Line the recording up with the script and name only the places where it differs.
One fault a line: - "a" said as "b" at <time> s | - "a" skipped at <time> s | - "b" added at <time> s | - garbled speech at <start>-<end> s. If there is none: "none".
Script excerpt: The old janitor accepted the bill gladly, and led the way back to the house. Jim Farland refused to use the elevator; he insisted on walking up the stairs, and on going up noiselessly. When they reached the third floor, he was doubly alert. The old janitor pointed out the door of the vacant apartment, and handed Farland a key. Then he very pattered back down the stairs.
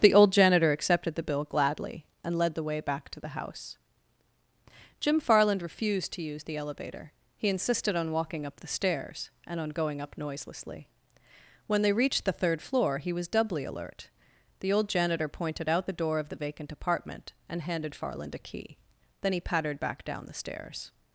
- "very" skipped at 19.4 s